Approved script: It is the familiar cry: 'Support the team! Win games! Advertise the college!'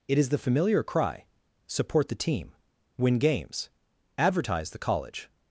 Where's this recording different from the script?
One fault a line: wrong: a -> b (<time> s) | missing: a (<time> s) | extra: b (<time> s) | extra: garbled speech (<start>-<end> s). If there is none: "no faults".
no faults